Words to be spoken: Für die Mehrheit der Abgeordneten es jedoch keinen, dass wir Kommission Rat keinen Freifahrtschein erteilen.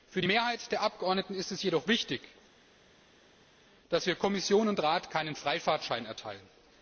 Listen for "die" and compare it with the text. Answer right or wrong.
right